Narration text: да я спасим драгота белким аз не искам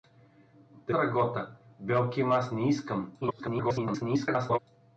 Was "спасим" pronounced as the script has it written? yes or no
no